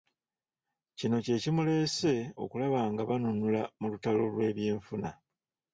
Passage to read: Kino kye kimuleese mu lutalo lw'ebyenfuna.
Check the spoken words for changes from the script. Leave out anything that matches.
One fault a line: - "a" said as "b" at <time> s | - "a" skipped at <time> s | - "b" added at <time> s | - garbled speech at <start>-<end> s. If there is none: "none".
- "okulaba ng'a banunula" added at 2.4 s